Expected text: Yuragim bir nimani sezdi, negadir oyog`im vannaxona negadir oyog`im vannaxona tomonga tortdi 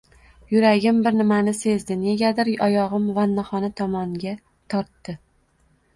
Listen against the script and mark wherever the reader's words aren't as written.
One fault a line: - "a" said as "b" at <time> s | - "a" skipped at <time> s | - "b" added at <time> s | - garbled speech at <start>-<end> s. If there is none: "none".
- "negadir oyog`im vannaxona" skipped at 3.7 s